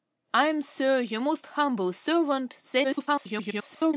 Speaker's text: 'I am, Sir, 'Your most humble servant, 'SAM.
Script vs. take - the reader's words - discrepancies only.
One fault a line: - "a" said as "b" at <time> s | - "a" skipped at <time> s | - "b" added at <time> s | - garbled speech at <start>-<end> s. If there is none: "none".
- garbled speech at 2.8-3.9 s